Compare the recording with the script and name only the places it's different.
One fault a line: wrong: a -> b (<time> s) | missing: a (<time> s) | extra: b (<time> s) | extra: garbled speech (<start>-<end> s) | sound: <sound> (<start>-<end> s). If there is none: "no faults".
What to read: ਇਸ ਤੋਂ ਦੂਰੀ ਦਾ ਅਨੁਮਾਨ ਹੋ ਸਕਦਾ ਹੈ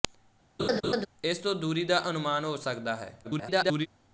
sound: laugh (0.6-1.1 s)
extra: garbled speech (3.2-3.9 s)